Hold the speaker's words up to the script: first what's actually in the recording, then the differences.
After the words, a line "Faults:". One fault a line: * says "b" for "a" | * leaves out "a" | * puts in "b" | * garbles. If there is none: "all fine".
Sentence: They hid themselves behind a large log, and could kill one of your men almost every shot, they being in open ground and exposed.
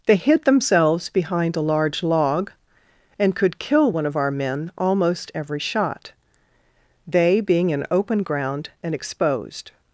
They hid themselves behind a large log, and could kill one of our men almost every shot, they being in open ground and exposed.
Faults:
* says "our" for "your"